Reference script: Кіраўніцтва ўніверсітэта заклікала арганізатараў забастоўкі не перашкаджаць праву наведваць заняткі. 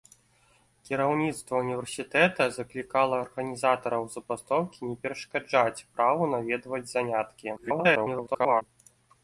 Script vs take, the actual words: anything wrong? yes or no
yes